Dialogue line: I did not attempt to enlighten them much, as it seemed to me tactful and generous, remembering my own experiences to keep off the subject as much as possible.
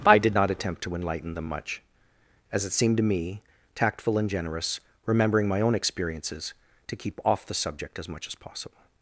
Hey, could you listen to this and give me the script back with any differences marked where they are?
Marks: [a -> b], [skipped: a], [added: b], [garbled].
I did not attempt to enlighten them much, as it seemed to me tactful and generous, remembering my own experiences to keep off the subject as much as possible.